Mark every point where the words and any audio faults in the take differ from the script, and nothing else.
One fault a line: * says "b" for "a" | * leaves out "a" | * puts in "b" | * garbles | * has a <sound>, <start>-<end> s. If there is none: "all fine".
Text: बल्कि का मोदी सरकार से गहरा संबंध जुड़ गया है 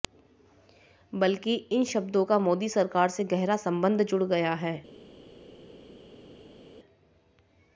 * puts in "इन शब्दों"